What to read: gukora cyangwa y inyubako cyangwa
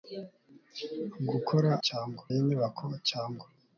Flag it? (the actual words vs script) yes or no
no